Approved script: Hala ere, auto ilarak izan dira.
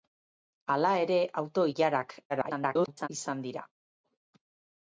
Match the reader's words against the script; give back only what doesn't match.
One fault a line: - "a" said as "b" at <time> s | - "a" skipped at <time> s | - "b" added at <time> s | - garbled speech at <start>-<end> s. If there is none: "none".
- garbled speech at 2.3-3.1 s